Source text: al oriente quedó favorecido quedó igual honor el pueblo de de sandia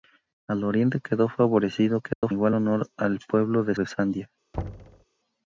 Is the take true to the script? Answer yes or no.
yes